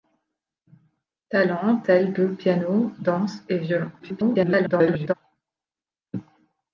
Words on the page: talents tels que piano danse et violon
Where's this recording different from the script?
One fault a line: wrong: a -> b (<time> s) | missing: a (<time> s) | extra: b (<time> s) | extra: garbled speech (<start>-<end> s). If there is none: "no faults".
extra: garbled speech (4.0-5.1 s)